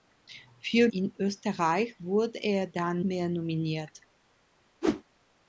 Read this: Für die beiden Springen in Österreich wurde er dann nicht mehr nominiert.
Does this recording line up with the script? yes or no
no